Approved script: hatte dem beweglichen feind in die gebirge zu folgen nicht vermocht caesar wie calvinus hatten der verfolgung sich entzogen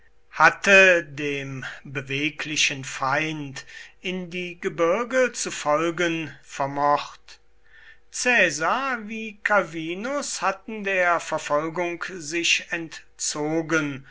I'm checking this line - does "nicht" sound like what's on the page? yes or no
no